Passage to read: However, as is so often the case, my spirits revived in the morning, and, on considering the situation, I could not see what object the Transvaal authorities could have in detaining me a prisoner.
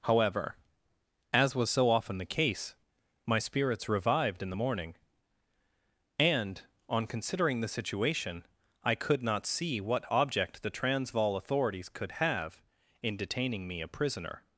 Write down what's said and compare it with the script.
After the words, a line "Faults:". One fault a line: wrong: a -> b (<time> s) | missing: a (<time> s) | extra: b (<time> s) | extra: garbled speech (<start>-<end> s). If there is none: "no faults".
However, as was so often the case, my spirits revived in the morning, and, on considering the situation, I could not see what object the Transvaal authorities could have in detaining me a prisoner.
Faults:
wrong: is -> was (1.6 s)